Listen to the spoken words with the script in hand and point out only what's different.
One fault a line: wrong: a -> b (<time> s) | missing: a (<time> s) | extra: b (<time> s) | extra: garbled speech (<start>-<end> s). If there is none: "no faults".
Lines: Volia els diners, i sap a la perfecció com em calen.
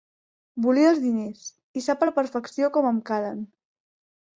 no faults